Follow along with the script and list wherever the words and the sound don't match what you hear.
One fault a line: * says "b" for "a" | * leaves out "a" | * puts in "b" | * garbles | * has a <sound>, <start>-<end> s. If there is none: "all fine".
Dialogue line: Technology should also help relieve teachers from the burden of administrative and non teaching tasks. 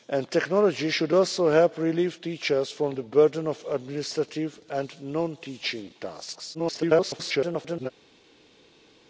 * garbles